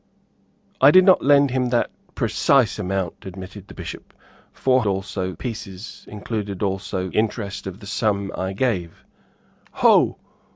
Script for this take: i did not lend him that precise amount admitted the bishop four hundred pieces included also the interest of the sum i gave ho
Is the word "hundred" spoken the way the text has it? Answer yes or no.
no